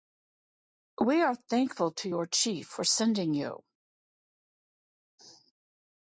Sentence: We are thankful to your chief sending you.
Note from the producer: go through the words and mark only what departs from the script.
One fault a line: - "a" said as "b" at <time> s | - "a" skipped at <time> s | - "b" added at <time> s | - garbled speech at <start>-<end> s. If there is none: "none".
- "for" added at 2.7 s